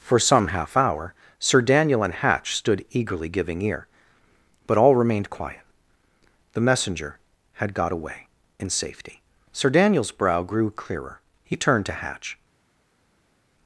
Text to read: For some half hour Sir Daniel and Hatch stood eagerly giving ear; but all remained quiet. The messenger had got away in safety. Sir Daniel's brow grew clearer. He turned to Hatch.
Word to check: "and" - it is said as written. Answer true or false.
true